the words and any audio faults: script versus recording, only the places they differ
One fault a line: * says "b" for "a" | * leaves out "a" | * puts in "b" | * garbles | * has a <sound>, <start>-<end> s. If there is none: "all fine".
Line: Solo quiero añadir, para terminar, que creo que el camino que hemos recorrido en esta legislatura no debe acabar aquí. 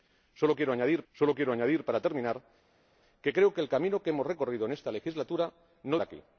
* puts in "solo quiero añadir"
* leaves out "debe acabar"